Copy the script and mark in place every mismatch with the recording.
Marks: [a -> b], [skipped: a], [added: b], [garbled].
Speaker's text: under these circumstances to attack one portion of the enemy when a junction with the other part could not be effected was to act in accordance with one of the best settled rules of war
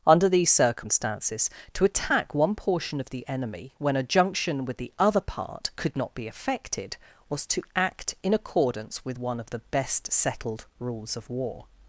under these circumstances to attack one portion of the enemy when a junction with the other part could not be effected was to act in accordance with one of the best settled rules of war